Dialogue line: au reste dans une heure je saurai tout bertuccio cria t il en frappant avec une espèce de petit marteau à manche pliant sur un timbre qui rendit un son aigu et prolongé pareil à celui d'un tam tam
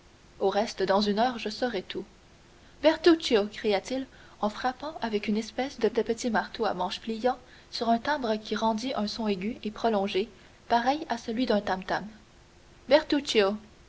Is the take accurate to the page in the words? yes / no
no